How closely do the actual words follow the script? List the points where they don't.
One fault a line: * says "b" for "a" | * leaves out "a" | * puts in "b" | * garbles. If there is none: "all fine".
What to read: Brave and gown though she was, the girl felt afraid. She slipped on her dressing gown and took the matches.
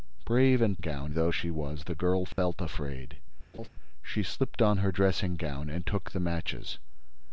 all fine